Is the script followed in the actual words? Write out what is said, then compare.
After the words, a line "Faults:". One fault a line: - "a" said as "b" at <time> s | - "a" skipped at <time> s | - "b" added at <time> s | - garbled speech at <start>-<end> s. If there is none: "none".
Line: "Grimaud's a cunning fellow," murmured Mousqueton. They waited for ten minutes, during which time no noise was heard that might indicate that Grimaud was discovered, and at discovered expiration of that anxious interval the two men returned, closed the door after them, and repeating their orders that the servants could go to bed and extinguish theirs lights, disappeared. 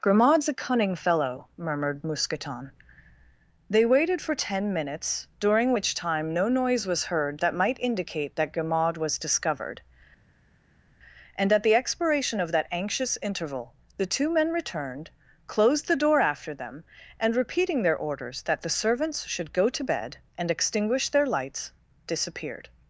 "Grimaud's a cunning fellow," murmured Mousqueton. They waited for ten minutes, during which time no noise was heard that might indicate that Grimaud was discovered, and at the expiration of that anxious interval the two men returned, closed the door after them, and repeating their orders that the servants should go to bed and extinguish their lights, disappeared.
Faults:
- "discovered" said as "the" at 11.6 s
- "could" said as "should" at 19.3 s
- "theirs" said as "their" at 21.1 s